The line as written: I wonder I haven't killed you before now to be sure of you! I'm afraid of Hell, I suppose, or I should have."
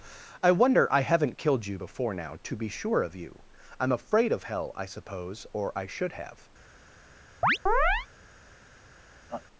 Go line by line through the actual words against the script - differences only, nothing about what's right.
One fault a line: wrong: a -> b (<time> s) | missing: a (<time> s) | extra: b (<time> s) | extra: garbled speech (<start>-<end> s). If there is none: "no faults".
no faults